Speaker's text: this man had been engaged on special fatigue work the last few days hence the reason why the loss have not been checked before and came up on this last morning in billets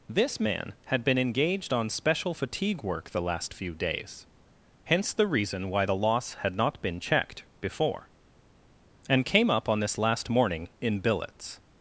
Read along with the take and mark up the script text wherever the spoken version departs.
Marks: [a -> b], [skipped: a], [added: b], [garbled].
this man had been engaged on special fatigue work the last few days hence the reason why the loss [have -> had] not been checked before and came up on this last morning in billets